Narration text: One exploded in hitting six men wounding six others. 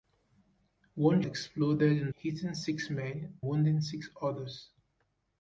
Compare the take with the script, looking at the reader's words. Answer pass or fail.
pass